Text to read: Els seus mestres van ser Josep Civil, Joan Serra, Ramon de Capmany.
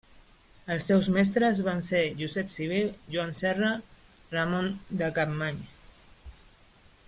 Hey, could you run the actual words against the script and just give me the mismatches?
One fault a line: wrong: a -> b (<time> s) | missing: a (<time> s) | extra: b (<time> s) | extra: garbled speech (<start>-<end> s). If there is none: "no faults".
no faults